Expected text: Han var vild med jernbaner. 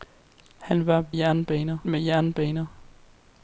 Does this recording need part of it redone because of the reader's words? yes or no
yes